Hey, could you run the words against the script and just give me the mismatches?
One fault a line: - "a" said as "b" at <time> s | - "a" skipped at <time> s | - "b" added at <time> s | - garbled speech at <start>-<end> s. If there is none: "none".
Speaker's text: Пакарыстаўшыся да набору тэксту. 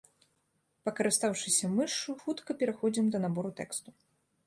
- "мышшу хутка пераходзім" added at 1.7 s